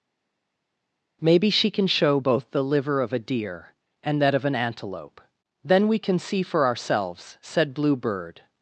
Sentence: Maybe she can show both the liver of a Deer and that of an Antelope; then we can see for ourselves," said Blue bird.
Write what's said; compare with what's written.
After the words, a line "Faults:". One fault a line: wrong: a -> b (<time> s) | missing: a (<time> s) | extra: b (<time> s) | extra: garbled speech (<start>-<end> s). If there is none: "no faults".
Maybe she can show both the liver of a Deer and that of an Antelope; then we can see for ourselves," said Blue bird.
Faults:
no faults